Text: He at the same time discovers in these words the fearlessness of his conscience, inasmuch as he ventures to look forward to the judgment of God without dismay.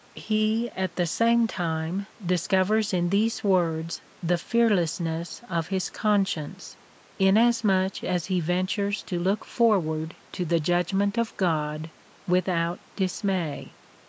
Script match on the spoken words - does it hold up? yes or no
yes